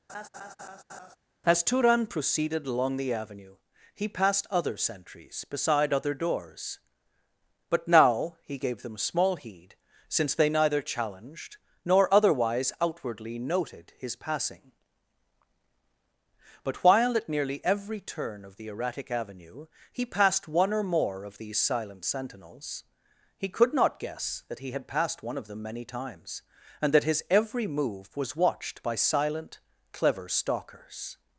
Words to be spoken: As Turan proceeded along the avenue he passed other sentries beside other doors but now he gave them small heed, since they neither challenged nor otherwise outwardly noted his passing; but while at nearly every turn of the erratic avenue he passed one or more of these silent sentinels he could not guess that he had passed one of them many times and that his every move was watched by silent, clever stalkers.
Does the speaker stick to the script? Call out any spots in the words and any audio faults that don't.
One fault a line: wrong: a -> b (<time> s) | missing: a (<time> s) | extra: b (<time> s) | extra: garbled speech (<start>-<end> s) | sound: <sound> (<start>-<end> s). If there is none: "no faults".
sound: laugh (0.1-1.2 s)